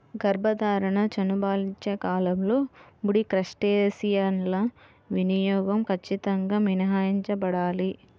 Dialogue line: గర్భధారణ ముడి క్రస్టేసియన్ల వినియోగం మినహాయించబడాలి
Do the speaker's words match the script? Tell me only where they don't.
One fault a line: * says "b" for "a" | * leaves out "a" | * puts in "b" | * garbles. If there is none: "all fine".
* puts in "చనుబాలిచ్చే కాలంలో"
* puts in "ఖచ్చితంగా"